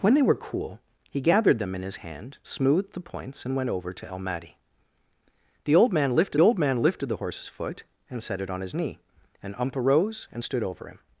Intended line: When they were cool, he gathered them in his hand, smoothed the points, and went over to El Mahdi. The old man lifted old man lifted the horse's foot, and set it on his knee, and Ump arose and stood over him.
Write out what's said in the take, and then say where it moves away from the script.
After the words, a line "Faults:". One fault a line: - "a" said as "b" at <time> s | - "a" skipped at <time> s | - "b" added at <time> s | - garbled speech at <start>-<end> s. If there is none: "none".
When they were cool, he gathered them in his hand, smoothed the points, and went over to El Mahdi. The old man lifted old man lifted the horse's foot, and set it on his knee, and Ump arose and stood over him.
Faults:
none